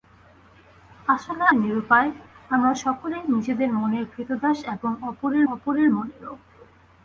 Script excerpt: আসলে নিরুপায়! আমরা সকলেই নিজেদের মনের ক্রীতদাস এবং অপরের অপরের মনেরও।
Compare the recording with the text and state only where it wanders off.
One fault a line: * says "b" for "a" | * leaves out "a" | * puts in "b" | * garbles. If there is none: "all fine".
all fine